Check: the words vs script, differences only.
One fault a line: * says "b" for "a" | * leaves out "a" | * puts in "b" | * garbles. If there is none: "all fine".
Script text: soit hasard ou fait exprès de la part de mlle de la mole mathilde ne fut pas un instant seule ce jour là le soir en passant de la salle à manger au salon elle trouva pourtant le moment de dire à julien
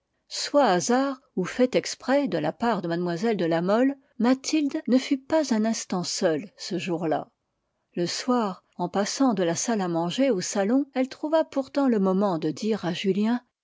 all fine